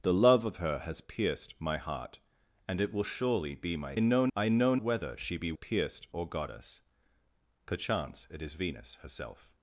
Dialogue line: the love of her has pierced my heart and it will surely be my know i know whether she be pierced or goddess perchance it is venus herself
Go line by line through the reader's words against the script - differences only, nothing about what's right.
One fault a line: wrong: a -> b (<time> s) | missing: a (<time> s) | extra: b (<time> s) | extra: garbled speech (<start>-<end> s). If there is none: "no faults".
no faults